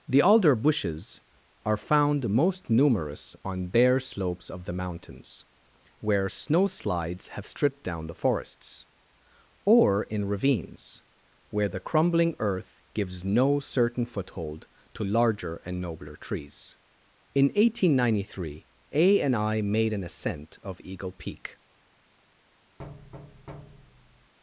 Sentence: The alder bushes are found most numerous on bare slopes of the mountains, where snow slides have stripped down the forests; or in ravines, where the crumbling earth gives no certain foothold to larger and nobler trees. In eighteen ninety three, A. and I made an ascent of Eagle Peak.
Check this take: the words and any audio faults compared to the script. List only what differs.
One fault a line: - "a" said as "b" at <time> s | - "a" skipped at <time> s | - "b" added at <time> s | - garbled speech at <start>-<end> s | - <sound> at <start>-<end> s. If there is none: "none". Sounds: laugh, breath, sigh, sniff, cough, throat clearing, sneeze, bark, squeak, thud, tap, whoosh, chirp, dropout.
- thud at 22.8-24.3 s